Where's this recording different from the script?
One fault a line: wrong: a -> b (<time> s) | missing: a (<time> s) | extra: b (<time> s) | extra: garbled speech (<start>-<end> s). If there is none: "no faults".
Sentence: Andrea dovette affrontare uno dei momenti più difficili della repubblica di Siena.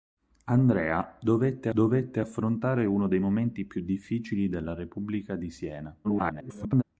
extra: dovette (1.7 s)
extra: garbled speech (6.0-6.8 s)